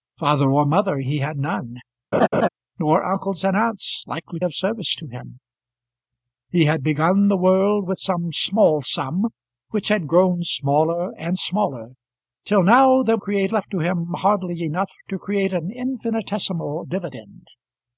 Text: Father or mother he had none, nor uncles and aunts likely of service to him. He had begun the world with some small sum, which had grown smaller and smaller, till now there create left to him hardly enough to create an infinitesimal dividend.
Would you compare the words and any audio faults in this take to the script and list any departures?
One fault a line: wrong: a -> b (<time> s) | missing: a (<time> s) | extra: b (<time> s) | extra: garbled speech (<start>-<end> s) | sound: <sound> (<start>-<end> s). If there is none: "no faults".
sound: laugh (2.1-2.5 s)